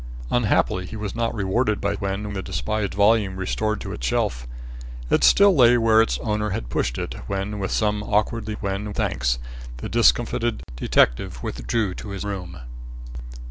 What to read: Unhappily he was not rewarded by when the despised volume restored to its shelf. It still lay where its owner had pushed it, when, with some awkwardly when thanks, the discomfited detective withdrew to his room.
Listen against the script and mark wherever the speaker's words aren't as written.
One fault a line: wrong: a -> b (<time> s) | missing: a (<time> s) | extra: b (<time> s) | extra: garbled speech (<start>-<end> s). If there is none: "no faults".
no faults